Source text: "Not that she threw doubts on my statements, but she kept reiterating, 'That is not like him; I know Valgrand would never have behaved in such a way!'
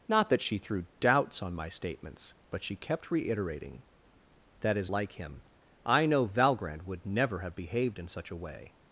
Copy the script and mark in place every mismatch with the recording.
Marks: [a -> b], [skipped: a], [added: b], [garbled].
"Not that she threw doubts on my statements, but she kept reiterating, 'That is [skipped: not] like him; I know Valgrand would never have behaved in such a way!'